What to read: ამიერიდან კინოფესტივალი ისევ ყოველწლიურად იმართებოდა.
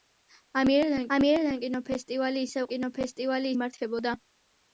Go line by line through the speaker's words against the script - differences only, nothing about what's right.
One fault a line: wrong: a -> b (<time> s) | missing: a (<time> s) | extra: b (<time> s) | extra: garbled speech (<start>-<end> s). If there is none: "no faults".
extra: ამიერიდან (1.2 s)
wrong: ყოველწლიურად -> კინოფესტივალი (2.7 s)